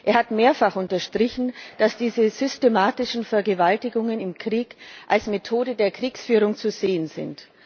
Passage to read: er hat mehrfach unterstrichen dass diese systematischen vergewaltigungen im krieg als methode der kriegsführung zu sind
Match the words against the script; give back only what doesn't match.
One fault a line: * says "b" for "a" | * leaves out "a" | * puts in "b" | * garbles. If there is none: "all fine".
* puts in "sehen"